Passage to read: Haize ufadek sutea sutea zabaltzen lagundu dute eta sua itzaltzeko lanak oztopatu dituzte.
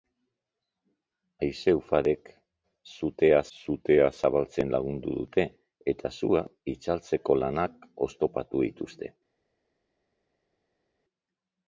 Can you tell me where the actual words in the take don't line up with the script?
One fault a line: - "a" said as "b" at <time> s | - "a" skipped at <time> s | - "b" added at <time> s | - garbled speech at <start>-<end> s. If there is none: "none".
none